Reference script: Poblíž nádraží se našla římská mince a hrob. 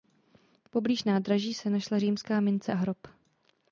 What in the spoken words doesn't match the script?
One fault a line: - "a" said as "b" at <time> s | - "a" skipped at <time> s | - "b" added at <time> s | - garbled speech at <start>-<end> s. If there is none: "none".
none